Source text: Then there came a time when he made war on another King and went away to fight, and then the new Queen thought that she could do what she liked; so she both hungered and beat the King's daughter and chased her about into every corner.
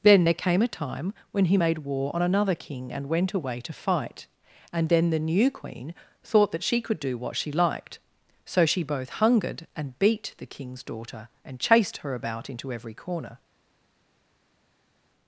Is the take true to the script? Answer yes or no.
yes